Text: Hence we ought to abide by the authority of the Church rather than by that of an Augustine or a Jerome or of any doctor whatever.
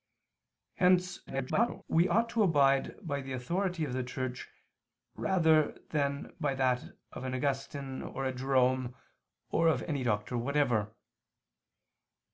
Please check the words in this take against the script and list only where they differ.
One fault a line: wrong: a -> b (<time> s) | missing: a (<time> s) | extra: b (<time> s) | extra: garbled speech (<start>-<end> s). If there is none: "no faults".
extra: garbled speech (1.3-1.8 s)